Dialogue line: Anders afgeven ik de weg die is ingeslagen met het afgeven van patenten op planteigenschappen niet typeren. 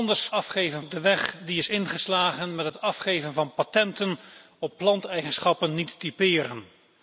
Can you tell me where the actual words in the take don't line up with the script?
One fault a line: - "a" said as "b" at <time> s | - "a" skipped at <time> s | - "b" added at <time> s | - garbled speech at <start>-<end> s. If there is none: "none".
none